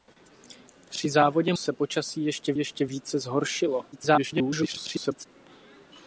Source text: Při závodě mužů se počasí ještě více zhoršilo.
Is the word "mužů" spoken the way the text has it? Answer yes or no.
no